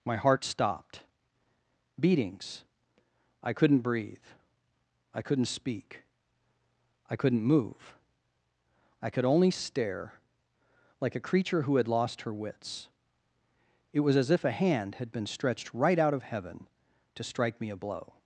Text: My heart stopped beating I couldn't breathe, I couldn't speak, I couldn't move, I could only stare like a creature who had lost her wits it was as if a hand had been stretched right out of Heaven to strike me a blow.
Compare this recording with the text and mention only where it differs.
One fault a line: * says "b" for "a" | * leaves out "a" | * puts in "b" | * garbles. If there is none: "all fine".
* says "beatings" for "beating"